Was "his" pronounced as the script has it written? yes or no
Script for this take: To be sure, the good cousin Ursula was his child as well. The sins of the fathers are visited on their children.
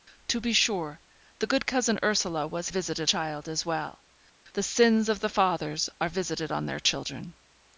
no